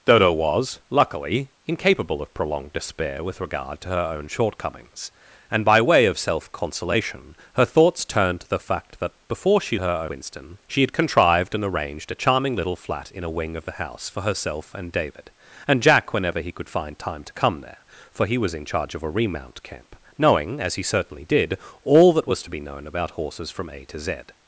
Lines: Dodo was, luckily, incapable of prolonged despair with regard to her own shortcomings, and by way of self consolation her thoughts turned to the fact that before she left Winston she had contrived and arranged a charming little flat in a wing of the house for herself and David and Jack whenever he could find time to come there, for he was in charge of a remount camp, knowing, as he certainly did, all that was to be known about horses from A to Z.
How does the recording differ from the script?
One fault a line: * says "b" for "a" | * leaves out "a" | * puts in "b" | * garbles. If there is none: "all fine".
* says "her" for "left"